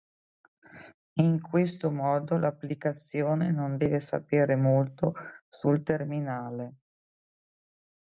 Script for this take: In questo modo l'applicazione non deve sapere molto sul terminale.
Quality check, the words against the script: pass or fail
pass